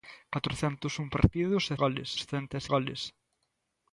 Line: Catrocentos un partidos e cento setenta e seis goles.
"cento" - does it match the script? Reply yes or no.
no